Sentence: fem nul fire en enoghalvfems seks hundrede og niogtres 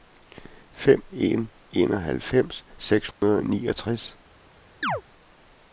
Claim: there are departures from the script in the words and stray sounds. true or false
true